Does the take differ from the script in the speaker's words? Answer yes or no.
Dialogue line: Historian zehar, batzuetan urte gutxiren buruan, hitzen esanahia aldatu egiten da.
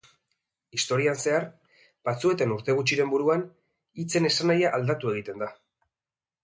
no